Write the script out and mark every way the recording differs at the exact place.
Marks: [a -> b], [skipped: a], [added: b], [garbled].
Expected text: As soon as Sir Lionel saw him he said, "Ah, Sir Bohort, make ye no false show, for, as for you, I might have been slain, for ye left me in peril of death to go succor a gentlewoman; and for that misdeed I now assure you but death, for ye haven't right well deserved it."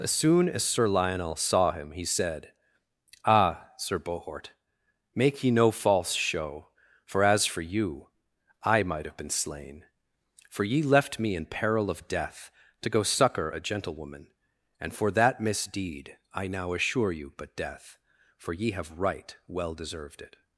As soon as Sir Lionel saw him he said, "Ah, Sir Bohort, make ye no false show, for, as for you, I might have been slain, for ye left me in peril of death to go succor a gentlewoman; and for that misdeed I now assure you but death, for ye [haven't -> have] right well deserved it."